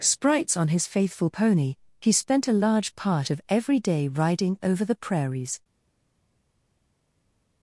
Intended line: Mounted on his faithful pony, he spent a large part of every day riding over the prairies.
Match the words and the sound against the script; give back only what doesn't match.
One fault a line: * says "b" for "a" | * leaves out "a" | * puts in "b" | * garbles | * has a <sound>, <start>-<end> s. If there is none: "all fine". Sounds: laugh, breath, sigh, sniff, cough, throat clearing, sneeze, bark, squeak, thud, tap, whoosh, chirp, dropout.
* says "Sprites" for "Mounted"